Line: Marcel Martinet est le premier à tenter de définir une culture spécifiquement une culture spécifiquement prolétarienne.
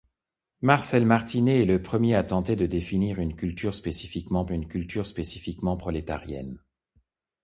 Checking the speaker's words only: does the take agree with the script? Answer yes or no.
yes